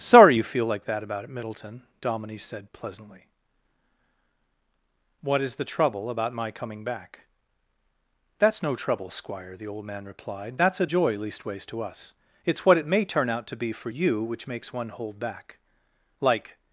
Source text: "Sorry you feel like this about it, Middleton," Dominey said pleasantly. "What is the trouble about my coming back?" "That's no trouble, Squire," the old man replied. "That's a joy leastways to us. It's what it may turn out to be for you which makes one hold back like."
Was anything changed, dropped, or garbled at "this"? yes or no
yes